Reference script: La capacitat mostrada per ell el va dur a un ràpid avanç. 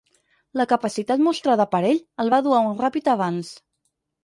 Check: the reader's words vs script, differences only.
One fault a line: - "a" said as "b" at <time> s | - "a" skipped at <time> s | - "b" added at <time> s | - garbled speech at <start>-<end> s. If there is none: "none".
none